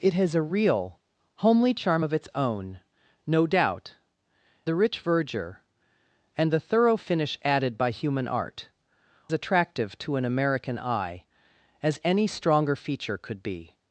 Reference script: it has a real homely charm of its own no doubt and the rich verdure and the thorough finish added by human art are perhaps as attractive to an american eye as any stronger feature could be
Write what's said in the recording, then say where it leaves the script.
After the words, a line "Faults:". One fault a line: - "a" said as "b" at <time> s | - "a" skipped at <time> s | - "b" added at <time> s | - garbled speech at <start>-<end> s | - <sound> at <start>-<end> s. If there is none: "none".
it has a real homely charm of its own no doubt the rich verdure and the thorough finish added by human art attractive to an american eye as any stronger feature could be
Faults:
- "and" skipped at 3.9 s
- "are perhaps as" skipped at 8.7 s